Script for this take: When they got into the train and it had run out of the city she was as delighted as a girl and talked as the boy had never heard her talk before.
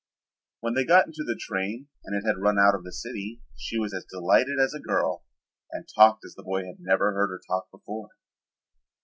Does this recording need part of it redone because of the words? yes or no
no